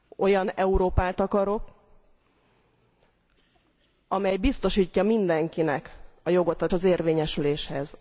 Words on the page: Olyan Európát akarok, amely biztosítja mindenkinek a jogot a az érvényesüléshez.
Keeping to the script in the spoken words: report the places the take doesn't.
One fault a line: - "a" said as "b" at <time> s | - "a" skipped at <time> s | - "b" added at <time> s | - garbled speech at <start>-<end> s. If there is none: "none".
none